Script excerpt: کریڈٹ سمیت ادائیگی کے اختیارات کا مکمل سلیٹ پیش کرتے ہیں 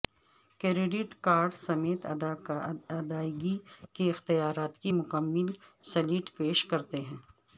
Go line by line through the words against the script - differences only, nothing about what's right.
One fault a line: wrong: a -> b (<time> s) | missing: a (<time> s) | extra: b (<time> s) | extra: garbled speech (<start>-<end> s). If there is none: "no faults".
extra: کارڈ (1.2 s)
wrong: کا -> کی (4.8 s)